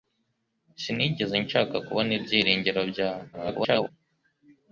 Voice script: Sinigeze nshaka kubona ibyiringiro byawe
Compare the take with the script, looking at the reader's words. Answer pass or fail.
fail